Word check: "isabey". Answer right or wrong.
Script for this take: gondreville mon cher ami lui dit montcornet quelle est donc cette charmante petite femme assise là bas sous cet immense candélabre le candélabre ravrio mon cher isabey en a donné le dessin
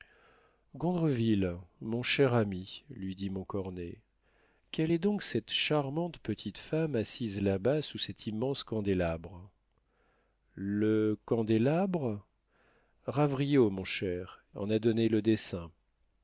wrong